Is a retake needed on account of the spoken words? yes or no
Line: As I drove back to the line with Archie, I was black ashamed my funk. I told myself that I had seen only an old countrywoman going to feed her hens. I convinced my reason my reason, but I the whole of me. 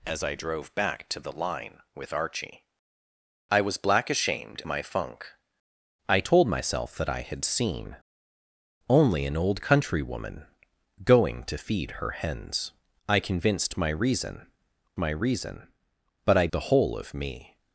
no